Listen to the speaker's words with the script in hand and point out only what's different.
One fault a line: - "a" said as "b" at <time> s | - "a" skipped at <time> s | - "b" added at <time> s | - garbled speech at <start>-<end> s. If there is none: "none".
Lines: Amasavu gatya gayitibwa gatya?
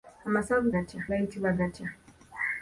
none